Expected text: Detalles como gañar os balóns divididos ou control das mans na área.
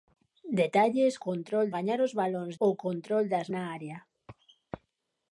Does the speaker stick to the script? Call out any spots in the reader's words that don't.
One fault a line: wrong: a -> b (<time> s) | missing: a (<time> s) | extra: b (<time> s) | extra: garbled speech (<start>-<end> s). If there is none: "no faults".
wrong: como -> control (1.3 s)
missing: divididos (2.5 s)
missing: mans (3.5 s)